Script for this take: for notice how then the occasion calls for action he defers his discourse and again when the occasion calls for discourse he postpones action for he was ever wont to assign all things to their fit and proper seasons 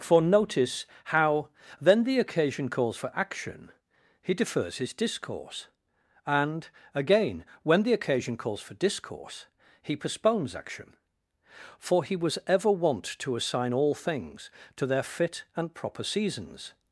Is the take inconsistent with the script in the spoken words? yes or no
no